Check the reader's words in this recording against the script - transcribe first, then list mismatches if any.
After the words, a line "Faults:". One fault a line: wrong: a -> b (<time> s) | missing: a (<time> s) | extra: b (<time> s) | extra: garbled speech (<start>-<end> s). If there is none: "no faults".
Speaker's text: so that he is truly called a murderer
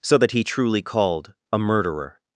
so that he truly called a murderer
Faults:
missing: is (0.4 s)